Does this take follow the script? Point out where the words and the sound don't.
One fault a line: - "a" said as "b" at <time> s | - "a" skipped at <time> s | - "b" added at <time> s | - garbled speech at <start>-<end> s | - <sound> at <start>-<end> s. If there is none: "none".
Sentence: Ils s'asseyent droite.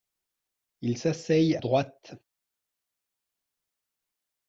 none